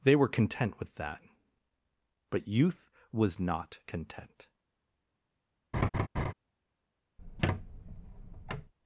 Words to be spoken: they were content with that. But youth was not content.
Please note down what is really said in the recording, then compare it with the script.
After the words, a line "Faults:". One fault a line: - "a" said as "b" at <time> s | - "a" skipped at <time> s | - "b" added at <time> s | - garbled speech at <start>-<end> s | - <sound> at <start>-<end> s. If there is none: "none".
they were content with that. But youth was not content.
Faults:
- laugh at 5.7-6.3 s
- squeak at 7.2-8.7 s